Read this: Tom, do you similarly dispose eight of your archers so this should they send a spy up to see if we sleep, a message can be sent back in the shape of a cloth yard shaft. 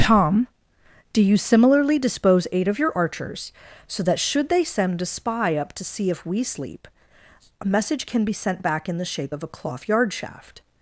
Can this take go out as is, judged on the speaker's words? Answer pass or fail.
fail